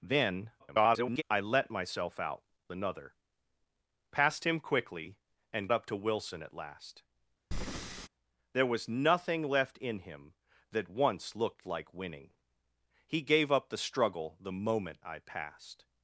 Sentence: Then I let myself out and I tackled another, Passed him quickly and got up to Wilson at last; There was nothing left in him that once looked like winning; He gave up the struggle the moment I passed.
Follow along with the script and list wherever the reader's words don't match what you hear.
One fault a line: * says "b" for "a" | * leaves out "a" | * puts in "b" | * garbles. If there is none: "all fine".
* garbles
* leaves out "and I tackled"
* leaves out "got"